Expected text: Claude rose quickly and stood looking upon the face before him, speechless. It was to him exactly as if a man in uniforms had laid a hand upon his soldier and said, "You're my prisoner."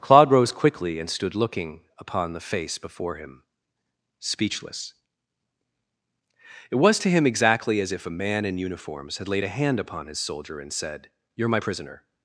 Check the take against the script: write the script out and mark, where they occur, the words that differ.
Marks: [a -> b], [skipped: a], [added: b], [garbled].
Claude rose quickly and stood looking upon the face before him, speechless. It was to him exactly as if a man in uniforms had laid a hand upon his soldier and said, "You're my prisoner."